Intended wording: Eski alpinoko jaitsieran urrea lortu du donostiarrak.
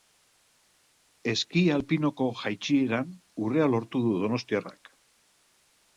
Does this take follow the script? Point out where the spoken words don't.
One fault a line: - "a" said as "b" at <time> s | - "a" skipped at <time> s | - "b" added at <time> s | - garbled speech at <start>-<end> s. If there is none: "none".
none